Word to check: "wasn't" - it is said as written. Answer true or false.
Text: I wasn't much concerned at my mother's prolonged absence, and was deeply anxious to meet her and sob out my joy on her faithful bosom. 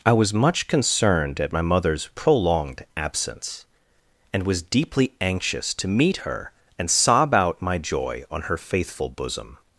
false